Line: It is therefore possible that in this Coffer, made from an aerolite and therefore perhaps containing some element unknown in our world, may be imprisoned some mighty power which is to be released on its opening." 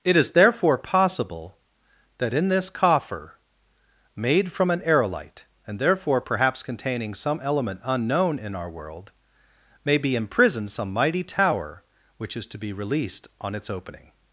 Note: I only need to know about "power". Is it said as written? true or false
false